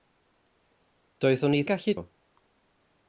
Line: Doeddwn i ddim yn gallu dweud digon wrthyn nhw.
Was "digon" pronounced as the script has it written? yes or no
no